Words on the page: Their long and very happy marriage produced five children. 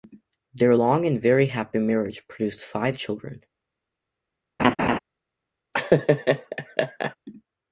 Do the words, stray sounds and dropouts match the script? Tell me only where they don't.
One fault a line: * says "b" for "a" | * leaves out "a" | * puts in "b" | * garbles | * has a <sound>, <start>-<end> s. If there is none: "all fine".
* has a laugh, 4.6-5.0 s
* has a laugh, 5.7-7.2 s